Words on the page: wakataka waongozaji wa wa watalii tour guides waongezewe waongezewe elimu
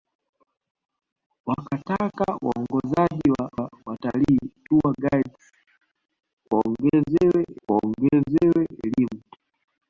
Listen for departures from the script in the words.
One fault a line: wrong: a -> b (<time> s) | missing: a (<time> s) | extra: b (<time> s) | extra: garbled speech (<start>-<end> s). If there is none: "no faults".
no faults